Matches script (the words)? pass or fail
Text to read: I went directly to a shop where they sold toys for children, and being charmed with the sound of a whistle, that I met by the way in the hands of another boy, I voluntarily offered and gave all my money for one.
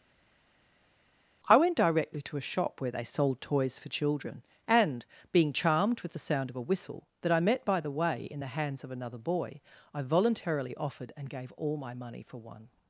pass